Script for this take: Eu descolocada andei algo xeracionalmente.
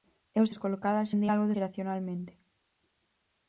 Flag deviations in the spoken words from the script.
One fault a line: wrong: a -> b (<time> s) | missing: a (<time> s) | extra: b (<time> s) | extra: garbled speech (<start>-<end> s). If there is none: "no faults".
no faults